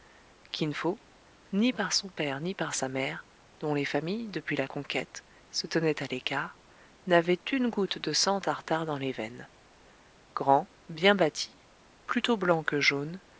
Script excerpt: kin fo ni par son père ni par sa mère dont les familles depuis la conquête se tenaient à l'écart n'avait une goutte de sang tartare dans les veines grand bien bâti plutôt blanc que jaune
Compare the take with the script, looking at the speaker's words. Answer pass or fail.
pass